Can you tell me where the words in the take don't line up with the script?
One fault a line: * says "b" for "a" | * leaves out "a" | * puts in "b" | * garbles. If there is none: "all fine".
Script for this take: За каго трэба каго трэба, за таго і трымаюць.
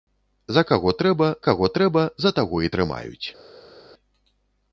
all fine